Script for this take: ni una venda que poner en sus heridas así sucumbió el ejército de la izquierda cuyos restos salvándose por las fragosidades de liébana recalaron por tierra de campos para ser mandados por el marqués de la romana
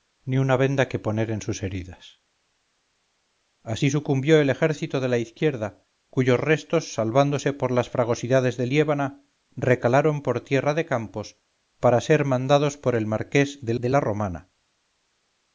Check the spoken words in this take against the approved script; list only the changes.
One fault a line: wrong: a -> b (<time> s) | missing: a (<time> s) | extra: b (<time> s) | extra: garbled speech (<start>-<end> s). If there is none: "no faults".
extra: de (13.8 s)